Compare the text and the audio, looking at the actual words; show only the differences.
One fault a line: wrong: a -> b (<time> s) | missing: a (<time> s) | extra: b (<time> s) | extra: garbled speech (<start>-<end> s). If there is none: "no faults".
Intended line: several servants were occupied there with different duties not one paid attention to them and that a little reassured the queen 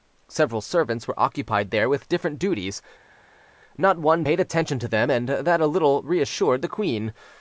no faults